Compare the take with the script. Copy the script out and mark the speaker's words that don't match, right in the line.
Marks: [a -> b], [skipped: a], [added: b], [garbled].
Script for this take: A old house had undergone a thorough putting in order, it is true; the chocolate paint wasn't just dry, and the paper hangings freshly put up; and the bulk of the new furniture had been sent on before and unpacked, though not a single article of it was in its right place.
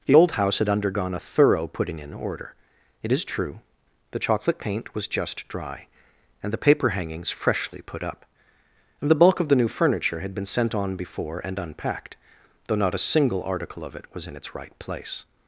[A -> The] old house had undergone a thorough putting in order, it is true; the chocolate paint [wasn't -> was] just dry, and the paper hangings freshly put up; and the bulk of the new furniture had been sent on before and unpacked, though not a single article of it was in its right place.